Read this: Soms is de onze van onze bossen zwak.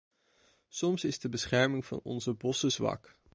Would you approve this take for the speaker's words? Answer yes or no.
no